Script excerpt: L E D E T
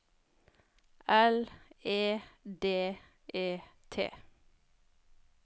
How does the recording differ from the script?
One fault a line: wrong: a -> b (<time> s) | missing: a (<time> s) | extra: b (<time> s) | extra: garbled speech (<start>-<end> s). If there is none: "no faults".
no faults